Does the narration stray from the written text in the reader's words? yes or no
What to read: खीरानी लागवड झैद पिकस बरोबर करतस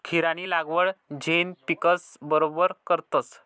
no